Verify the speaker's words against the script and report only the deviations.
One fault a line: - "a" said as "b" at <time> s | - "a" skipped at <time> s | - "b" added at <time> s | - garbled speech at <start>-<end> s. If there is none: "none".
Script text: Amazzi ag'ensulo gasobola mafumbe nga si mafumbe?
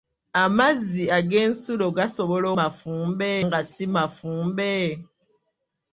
none